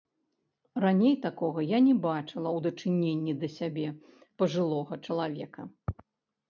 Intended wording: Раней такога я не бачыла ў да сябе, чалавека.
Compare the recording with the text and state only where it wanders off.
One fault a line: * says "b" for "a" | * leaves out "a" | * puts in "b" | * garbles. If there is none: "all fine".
* puts in "дачыненні"
* puts in "пажылога"